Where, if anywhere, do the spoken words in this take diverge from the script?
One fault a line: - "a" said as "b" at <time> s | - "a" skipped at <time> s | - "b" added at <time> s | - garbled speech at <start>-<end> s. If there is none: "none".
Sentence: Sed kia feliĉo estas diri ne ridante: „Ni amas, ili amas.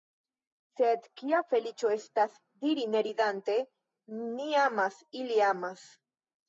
none